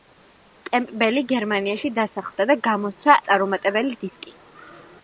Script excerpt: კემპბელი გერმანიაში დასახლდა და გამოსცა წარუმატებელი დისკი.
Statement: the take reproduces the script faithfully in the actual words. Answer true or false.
true